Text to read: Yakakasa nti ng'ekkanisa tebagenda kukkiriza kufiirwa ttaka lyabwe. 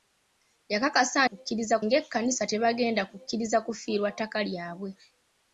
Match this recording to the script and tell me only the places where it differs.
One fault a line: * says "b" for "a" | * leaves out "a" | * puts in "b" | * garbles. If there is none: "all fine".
* says "kukkiriza" for "nti"